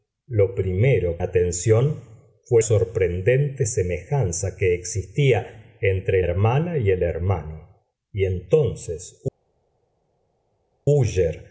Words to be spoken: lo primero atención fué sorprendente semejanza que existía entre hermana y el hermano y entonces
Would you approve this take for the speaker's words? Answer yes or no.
yes